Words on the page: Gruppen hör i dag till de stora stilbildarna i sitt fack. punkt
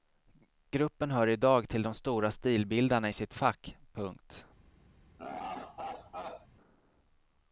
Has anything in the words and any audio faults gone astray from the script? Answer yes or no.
yes